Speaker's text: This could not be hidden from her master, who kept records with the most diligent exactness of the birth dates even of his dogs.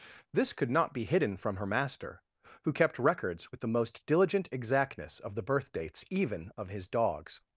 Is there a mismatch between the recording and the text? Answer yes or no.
no